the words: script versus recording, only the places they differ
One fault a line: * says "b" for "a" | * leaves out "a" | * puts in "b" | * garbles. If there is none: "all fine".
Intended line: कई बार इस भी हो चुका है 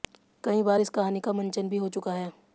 * puts in "कहानी का मंचन"